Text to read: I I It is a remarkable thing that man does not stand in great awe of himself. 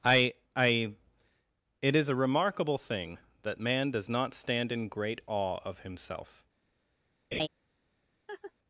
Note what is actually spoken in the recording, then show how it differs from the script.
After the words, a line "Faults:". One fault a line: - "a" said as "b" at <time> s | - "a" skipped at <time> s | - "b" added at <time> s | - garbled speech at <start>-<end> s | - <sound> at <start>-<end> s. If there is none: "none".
I I It is a remarkable thing that man does not stand in great awe of himself.
Faults:
- laugh at 7.3-7.5 s
- laugh at 8.3-8.5 s